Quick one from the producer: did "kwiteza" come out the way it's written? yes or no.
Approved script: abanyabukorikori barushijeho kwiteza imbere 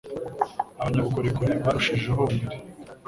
no